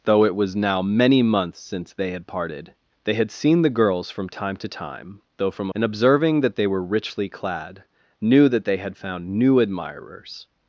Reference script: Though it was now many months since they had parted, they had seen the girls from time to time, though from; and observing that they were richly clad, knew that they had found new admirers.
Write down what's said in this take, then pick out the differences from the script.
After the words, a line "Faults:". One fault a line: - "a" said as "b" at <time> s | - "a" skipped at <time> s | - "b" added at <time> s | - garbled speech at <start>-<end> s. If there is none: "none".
Though it was now many months since they had parted, they had seen the girls from time to time, though from; and observing that they were richly clad, knew that they had found new admirers.
Faults:
none